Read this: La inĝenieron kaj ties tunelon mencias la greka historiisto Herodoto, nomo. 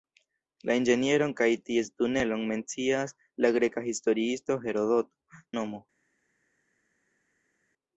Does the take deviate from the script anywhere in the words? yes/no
no